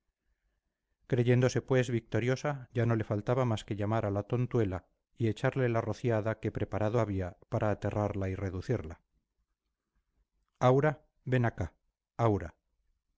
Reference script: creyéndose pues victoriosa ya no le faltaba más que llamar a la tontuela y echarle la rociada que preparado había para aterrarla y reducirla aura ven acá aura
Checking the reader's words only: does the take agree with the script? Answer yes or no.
yes